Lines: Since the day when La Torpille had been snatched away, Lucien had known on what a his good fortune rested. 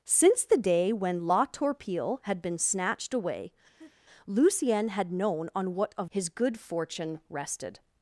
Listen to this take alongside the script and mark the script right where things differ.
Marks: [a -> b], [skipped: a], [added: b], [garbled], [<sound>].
Since the day when La Torpille had been snatched away, [laugh] Lucien had known on what a his good fortune rested.